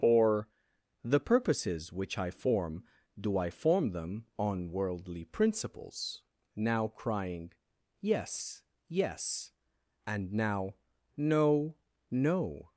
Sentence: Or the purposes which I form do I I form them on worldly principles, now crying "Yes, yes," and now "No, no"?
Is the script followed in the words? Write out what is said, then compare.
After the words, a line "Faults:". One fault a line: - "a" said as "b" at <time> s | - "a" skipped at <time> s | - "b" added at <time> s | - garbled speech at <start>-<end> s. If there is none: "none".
Or the purposes which I form do I form them on worldly principles, now crying "Yes, yes," and now "No, no"?
Faults:
- "I" skipped at 3.5 s